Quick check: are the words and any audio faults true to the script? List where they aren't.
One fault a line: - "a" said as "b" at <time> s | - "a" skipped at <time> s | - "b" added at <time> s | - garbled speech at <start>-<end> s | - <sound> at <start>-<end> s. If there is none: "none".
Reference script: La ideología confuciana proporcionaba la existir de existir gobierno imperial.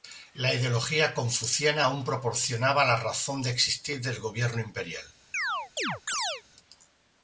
- "aún" added at 1.8 s
- "existir" said as "razón" at 3.0 s
- "del" added at 4.0 s
- chirp at 5.3-6.4 s